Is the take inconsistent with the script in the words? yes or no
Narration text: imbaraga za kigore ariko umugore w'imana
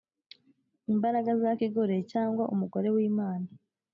yes